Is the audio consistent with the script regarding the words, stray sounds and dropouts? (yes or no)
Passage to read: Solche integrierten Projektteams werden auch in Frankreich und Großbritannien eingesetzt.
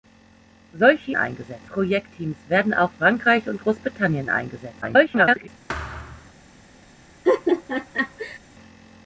no